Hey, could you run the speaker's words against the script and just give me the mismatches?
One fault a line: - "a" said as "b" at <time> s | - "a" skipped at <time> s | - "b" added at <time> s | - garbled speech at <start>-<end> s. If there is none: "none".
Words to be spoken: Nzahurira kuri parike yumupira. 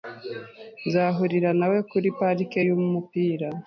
- "nawe" added at 1.6 s